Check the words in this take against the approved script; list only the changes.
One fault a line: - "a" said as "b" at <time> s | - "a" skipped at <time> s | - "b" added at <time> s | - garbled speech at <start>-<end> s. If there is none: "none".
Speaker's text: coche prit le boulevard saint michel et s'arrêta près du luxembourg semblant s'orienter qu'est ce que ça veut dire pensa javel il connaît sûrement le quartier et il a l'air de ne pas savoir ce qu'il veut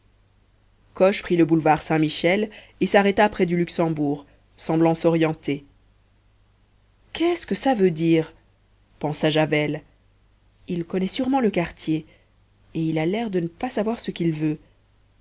none